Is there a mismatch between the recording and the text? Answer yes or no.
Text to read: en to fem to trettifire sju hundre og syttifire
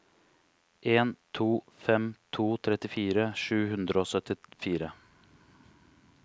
no